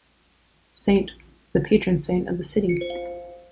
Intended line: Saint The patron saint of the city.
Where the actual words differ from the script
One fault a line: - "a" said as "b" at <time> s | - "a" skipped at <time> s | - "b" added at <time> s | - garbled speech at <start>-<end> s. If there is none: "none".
none